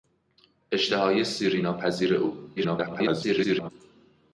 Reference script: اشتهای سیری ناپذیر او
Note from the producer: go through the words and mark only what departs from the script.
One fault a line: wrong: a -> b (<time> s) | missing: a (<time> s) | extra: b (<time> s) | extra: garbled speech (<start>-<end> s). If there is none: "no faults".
extra: garbled speech (2.6-3.7 s)